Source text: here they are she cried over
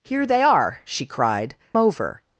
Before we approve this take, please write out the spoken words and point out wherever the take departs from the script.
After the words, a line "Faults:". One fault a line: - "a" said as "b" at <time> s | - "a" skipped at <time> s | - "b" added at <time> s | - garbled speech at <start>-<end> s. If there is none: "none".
here they are she cried over
Faults:
none